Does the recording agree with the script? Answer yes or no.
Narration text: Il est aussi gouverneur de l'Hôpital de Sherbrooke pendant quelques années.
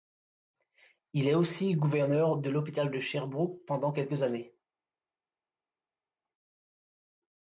yes